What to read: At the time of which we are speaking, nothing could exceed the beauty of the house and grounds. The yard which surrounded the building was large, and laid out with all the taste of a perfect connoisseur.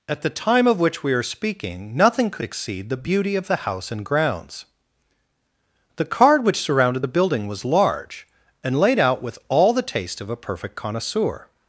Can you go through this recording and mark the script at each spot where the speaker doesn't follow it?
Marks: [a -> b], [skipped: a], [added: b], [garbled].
At the time of which we are speaking, nothing could exceed the beauty of the house and grounds. The [yard -> card] which surrounded the building was large, and laid out with all the taste of a perfect connoisseur.